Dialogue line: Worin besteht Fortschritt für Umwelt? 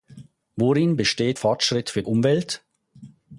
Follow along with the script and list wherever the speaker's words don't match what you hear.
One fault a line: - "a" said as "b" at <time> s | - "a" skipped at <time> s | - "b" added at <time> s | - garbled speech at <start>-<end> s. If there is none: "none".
none